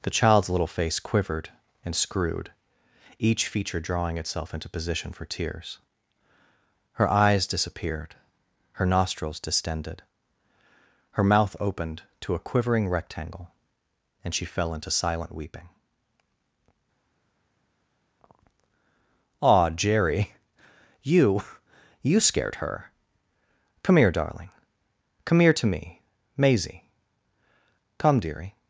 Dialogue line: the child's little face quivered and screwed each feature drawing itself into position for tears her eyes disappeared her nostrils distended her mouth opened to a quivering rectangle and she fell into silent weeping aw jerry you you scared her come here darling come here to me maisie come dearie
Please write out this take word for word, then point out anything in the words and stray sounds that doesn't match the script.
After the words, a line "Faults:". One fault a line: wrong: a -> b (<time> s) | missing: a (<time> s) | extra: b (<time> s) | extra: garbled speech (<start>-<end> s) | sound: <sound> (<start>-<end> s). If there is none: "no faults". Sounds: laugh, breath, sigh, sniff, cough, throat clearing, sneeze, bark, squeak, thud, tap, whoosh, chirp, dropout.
the child's little face quivered and screwed each feature drawing itself into position for tears her eyes disappeared her nostrils distended her mouth opened to a quivering rectangle and she fell into silent weeping aw jerry you you scared her come here darling come here to me maisie come dearie
Faults:
no faults